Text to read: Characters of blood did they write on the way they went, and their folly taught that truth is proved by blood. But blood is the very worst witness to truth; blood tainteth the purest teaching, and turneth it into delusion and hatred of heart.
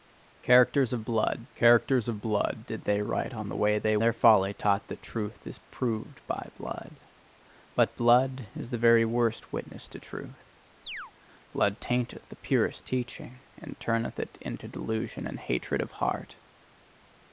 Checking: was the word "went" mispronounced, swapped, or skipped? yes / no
yes